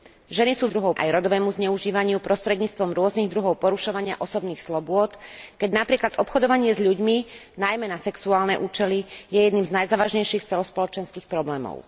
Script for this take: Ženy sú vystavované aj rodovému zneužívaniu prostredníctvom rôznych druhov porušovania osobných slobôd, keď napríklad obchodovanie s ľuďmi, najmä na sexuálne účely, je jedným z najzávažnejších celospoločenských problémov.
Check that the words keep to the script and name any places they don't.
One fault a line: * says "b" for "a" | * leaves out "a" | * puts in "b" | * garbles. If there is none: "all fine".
* says "druhov" for "vystavované"